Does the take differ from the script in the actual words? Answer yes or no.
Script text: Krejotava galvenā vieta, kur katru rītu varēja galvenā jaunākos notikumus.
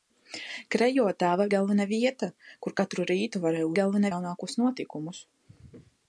no